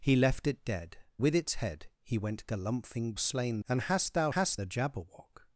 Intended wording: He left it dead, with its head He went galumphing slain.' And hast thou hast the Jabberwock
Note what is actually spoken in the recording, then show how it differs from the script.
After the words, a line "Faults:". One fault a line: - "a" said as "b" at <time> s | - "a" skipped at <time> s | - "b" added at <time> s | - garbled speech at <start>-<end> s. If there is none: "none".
He left it dead, with its head He went galumphing slain.' And hast thou hast the Jabberwock
Faults:
none